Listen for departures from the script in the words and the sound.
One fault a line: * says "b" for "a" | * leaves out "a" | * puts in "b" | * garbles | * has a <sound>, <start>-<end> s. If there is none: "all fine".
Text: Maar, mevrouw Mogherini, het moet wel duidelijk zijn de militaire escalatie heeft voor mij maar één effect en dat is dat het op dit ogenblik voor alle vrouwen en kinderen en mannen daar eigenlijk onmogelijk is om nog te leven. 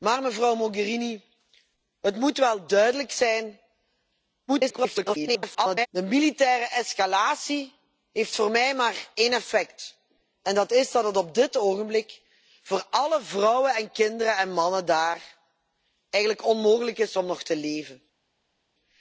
* garbles